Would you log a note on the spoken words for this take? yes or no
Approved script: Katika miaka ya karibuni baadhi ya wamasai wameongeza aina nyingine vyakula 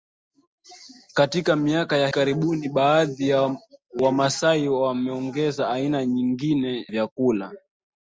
no